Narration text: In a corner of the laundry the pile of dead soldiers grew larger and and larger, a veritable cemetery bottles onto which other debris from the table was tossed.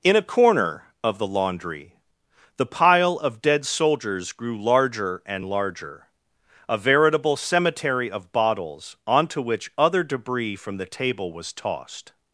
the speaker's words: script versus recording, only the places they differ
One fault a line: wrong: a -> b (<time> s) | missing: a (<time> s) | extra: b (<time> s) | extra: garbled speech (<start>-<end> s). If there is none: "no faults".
missing: and (5.5 s)
extra: of (8.1 s)